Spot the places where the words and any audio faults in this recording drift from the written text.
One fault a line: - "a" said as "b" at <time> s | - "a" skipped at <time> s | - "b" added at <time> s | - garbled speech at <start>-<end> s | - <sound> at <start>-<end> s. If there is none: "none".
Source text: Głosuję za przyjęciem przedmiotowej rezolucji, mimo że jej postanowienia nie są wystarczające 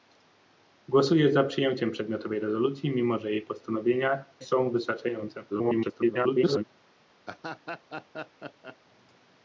- "nie" skipped at 4.2 s
- garbled speech at 5.5-6.6 s
- laugh at 7.3-8.8 s